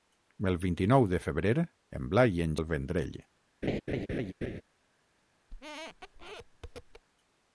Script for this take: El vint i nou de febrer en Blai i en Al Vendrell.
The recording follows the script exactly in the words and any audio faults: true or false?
false